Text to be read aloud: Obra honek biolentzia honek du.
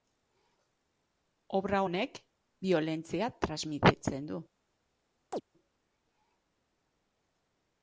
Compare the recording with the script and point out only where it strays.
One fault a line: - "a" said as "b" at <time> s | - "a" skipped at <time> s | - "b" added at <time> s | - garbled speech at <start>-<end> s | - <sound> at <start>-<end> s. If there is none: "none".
- "honek" said as "transmititzen" at 3.4 s
- chirp at 5.3-5.4 s